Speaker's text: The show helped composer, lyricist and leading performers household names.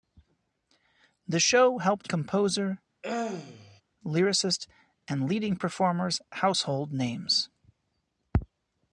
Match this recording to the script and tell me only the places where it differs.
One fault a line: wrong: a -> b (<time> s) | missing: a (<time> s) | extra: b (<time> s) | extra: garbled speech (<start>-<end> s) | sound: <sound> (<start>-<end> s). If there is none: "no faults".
sound: throat clearing (3.0-3.8 s)